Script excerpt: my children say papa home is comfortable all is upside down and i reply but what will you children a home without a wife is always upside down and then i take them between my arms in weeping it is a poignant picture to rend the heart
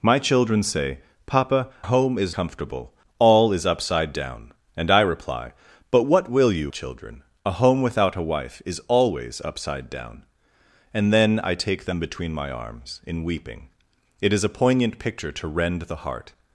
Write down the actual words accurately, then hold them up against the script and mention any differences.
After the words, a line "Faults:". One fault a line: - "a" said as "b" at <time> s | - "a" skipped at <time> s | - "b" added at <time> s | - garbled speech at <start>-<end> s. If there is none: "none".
my children say papa home is comfortable all is upside down and i reply but what will you children a home without a wife is always upside down and then i take them between my arms in weeping it is a poignant picture to rend the heart
Faults:
none